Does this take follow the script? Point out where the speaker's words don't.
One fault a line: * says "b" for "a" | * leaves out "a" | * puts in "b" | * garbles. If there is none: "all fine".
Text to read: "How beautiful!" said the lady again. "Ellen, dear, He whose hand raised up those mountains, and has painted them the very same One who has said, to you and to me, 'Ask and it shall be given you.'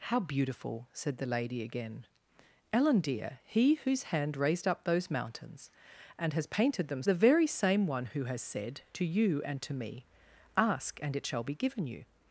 all fine